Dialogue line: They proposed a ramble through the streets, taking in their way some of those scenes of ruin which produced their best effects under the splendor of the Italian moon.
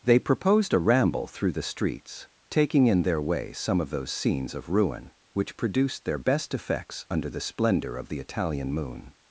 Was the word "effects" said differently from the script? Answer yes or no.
no